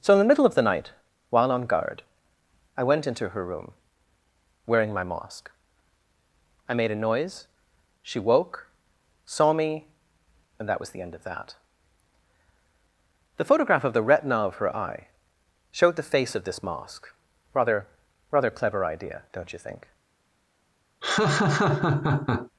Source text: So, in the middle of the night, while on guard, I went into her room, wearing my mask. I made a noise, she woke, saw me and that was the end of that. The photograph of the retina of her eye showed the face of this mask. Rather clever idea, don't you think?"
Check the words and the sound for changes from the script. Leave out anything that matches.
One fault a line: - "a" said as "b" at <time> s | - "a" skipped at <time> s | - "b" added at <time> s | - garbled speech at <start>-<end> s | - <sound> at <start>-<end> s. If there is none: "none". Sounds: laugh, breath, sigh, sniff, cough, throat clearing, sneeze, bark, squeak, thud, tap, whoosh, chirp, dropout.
- "Rather" added at 18.3 s
- laugh at 21.0-22.5 s